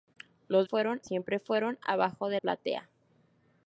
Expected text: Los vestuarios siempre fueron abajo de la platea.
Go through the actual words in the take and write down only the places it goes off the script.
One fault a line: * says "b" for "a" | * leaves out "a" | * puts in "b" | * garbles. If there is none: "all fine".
* says "fueron" for "vestuarios"
* leaves out "la"